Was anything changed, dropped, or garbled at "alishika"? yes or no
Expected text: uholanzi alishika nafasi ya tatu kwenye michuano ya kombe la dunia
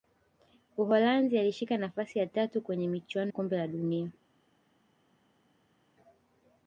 no